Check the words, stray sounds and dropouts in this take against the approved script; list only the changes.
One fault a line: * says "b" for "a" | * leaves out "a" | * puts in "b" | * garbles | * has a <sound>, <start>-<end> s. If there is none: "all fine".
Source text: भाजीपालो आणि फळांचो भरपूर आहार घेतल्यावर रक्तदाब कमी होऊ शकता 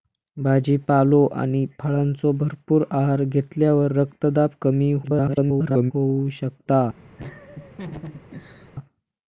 * garbles
* has a laugh, 7.2-8.7 s